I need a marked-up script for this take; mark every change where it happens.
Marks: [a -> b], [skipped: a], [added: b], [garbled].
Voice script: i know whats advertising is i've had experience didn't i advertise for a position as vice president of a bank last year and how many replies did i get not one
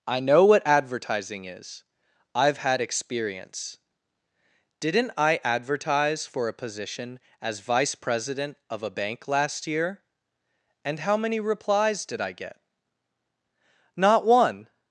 i know [whats -> what] advertising is i've had experience didn't i advertise for a position as vice president of a bank last year and how many replies did i get not one